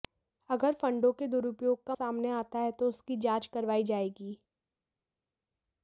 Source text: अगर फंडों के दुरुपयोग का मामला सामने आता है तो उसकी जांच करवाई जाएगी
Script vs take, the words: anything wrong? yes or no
yes